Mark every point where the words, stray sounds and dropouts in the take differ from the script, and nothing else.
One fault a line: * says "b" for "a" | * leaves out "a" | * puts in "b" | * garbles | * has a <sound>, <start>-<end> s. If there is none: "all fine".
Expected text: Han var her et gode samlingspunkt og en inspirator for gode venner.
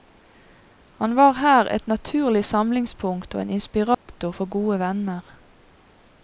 * says "naturlig" for "gode"
* has a dropout, 3.9-4.1 s